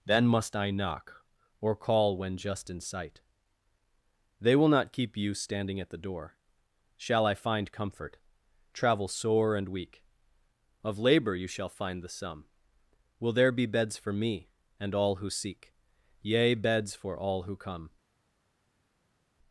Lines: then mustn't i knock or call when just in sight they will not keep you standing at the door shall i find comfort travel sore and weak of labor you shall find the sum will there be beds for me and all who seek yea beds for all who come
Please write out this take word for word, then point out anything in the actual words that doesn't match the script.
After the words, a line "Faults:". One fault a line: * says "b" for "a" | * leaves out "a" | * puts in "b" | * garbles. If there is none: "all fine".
then must i knock or call when just in sight they will not keep you standing at the door shall i find comfort travel sore and weak of labor you shall find the sum will there be beds for me and all who seek yea beds for all who come
Faults:
* says "must" for "mustn't"